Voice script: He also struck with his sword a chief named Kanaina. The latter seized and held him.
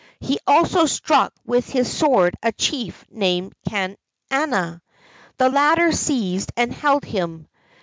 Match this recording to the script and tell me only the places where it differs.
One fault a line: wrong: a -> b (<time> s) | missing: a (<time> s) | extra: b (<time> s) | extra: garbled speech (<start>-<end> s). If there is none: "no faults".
no faults